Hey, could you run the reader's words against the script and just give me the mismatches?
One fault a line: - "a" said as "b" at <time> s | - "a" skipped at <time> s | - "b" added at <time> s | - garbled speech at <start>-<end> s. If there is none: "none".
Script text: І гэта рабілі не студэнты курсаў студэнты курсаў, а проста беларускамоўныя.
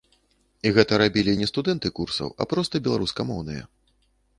- "студэнты курсаў" skipped at 2.4 s